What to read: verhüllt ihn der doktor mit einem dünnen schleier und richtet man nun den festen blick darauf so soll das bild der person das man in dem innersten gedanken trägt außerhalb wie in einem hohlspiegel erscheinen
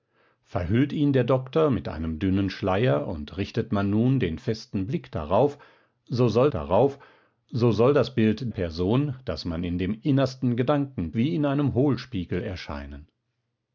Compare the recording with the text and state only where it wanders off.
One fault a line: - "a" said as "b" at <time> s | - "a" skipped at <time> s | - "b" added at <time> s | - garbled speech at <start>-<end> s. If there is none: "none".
- "darauf so soll" added at 6.5 s
- "der" skipped at 8.5 s
- "trägt außerhalb" skipped at 11.1 s